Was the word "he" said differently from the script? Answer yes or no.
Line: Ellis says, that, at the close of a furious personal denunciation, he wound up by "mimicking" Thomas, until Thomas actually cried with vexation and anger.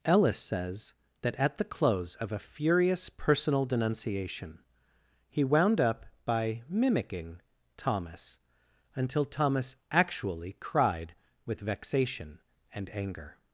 no